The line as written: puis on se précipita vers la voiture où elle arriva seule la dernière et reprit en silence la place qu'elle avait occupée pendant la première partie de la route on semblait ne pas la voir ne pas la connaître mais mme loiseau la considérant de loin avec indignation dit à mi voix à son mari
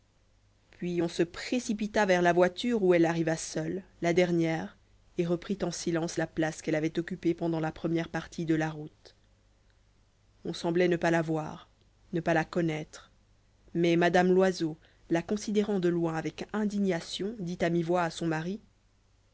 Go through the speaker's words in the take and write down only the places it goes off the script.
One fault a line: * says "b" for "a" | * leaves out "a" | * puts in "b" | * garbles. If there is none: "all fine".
all fine